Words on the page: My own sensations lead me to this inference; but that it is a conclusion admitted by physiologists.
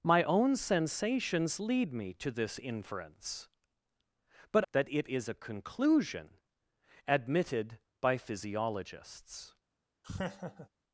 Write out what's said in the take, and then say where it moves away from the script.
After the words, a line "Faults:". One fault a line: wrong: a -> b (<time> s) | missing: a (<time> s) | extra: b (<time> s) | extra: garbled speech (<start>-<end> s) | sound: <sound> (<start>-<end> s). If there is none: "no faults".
My own sensations lead me to this inference; but that it is a conclusion admitted by physiologists.
Faults:
sound: laugh (10.0-10.7 s)